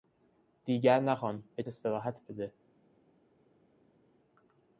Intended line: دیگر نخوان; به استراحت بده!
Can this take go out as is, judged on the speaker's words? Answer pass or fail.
pass